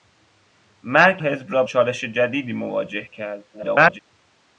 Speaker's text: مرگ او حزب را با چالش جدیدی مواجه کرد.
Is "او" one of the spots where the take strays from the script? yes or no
yes